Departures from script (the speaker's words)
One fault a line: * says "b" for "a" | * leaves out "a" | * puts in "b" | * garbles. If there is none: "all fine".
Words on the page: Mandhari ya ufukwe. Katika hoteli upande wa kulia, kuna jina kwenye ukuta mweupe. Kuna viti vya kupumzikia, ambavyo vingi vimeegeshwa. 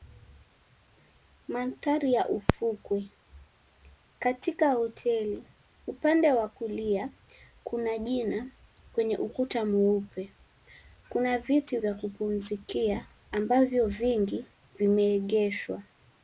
all fine